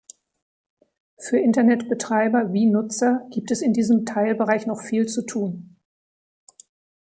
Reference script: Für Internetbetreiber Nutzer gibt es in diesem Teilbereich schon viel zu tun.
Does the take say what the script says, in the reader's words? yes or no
no